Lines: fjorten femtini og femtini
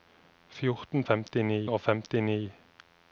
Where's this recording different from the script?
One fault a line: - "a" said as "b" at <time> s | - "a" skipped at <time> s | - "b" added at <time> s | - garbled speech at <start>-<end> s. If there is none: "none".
none